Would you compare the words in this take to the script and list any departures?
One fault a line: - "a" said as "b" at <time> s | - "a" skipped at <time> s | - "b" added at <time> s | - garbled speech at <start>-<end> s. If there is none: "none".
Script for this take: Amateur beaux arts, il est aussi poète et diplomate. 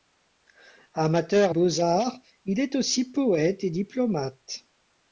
none